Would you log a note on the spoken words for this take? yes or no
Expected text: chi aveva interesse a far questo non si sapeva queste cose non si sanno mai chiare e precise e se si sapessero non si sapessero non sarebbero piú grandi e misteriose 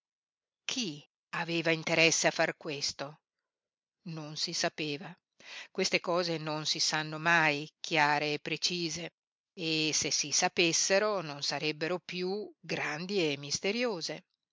yes